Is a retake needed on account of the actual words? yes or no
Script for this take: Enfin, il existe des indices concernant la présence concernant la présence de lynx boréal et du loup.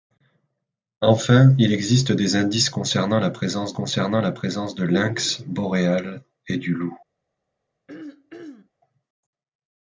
no